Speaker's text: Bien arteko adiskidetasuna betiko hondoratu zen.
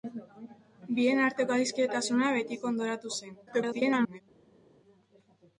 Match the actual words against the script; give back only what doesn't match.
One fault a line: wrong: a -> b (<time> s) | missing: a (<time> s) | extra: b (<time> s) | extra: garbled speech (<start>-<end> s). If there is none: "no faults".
extra: garbled speech (3.5-4.2 s)